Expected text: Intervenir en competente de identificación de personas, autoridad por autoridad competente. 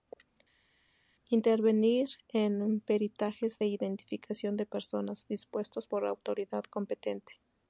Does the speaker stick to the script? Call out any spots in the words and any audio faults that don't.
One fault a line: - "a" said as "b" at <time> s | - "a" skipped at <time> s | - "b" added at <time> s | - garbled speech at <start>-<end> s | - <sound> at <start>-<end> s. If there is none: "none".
- "competente" said as "peritajes" at 2.8 s
- "autoridad" said as "dispuestos" at 5.3 s